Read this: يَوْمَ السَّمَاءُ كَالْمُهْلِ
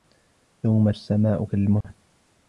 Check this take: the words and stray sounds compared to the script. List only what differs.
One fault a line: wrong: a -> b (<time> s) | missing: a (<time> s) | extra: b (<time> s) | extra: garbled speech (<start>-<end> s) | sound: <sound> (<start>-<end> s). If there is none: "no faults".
sound: dropout (1.8-1.8 s)